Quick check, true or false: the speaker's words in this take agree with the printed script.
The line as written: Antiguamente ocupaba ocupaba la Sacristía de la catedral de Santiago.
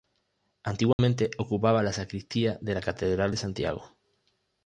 false